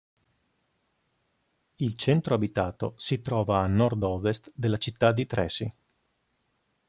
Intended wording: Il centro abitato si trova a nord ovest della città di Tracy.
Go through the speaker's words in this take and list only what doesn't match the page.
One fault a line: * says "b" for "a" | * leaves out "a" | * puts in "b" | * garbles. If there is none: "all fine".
all fine